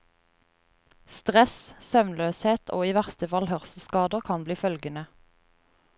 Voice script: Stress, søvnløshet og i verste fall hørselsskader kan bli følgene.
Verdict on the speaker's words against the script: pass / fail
pass